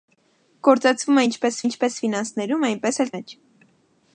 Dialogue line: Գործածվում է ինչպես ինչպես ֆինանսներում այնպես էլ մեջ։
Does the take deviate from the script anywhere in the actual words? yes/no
no